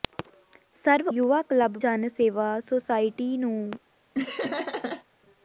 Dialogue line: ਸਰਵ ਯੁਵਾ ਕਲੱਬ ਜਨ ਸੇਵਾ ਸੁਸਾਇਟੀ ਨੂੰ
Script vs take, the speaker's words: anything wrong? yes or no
no